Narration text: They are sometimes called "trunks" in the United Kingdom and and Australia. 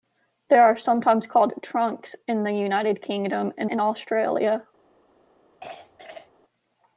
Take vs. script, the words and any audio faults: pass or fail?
fail